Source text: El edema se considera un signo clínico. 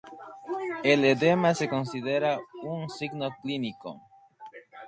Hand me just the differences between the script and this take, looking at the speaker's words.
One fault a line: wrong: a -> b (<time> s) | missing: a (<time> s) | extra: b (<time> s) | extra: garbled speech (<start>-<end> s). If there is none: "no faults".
no faults